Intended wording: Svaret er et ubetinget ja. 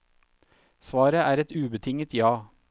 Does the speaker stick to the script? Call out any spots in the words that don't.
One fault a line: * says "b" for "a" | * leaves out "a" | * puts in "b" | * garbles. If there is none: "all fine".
all fine